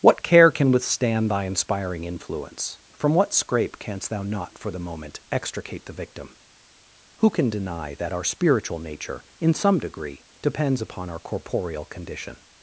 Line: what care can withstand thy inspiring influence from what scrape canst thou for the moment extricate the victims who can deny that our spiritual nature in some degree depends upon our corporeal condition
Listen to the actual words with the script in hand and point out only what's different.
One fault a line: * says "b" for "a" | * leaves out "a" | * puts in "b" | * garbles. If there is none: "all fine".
* puts in "not"
* says "victim" for "victims"